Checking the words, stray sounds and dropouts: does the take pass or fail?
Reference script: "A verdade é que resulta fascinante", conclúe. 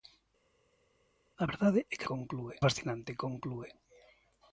fail